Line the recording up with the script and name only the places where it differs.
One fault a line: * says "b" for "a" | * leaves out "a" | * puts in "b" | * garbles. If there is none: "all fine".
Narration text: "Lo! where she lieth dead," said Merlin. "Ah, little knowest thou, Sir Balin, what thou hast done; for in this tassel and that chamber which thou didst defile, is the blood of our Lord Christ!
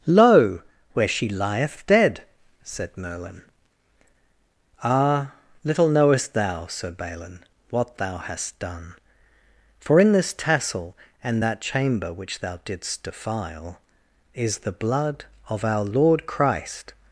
all fine